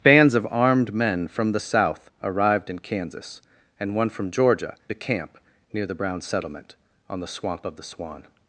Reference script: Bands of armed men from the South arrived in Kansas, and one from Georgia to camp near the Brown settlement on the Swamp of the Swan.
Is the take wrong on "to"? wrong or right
right